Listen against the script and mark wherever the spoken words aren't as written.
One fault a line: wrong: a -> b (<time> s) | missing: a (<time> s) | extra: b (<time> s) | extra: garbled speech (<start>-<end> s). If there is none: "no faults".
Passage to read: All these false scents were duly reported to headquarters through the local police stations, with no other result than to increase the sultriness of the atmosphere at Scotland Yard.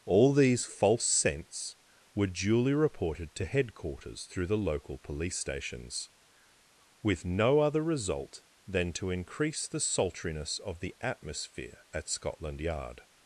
no faults